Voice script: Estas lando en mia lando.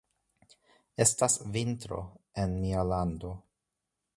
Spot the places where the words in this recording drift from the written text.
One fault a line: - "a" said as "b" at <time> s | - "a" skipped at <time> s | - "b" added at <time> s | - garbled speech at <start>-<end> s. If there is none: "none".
- "lando" said as "vintro" at 1.6 s